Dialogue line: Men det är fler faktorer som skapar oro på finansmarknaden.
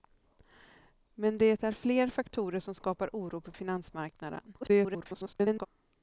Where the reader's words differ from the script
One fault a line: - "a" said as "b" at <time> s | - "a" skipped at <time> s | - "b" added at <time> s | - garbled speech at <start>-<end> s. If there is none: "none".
- garbled speech at 4.6-5.7 s